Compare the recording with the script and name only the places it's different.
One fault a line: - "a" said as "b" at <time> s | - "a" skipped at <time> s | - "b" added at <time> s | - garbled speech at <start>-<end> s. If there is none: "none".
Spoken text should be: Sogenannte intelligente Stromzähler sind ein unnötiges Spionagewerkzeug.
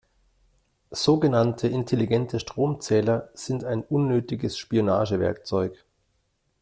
none